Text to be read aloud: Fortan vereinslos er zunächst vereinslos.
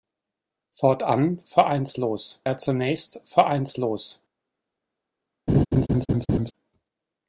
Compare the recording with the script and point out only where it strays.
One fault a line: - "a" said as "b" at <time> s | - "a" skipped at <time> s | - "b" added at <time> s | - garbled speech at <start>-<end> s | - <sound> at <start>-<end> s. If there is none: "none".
- laugh at 5.5-6.5 s